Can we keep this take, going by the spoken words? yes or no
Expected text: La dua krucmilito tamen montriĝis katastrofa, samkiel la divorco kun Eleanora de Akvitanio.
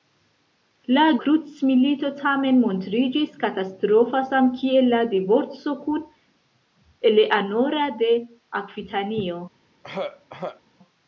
no